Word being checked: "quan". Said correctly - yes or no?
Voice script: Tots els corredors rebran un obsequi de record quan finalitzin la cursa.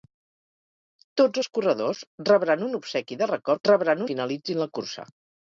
no